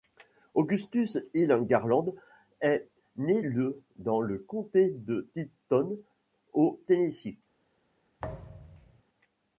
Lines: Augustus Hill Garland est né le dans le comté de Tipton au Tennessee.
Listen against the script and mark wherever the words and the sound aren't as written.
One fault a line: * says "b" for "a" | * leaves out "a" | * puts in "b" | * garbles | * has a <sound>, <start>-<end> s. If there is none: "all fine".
* has a thud, 8.2-9.0 s